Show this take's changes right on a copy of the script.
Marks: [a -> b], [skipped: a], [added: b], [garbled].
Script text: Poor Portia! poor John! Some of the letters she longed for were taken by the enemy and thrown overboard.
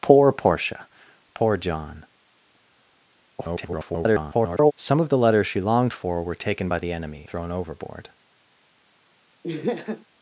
Poor Portia! poor John! [garbled] Some of the letters she longed for were taken by the enemy [skipped: and] thrown overboard.